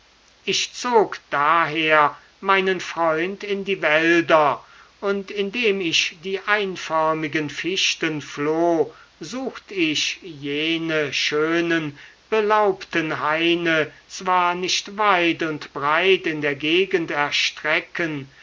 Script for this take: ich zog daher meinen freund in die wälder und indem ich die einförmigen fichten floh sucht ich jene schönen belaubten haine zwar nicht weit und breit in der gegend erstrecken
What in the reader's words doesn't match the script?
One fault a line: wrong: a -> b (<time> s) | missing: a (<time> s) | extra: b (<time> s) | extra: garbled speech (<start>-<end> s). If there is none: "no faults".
no faults